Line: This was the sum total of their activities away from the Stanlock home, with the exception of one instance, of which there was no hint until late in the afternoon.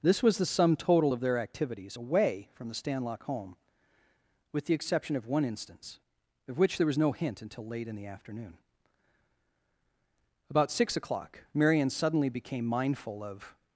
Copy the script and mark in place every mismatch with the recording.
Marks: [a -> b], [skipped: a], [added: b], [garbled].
This was the sum total of their activities away from the Stanlock home, with the exception of one instance, of which there was no hint until late in the afternoon. [added: About six o'clock Marion suddenly became mindful of]